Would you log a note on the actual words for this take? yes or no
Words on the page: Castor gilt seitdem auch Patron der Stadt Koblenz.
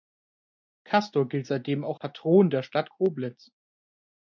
no